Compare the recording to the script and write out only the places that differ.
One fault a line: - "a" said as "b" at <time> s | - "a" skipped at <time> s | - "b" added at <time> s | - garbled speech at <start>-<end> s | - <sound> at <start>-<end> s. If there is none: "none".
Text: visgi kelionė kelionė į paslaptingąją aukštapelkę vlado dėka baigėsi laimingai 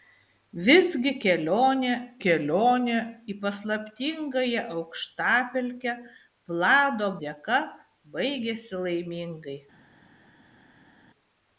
none